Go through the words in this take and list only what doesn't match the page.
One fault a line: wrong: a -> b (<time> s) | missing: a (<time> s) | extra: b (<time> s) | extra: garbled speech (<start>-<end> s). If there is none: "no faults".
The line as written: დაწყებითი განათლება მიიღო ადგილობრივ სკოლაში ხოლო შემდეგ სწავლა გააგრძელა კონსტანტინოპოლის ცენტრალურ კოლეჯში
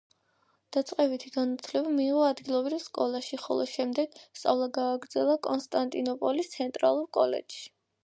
no faults